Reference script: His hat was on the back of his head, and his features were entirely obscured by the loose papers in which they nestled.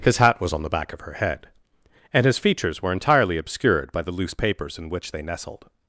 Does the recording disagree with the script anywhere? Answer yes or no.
yes